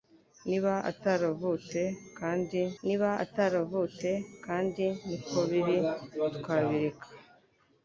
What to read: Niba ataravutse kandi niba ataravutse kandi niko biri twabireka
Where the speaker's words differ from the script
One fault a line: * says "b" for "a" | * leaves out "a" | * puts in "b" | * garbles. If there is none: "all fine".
all fine